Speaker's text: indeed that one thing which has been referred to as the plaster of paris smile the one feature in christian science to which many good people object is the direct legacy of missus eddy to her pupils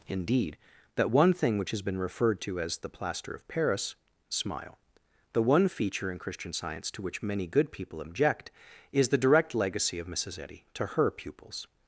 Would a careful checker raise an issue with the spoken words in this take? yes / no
no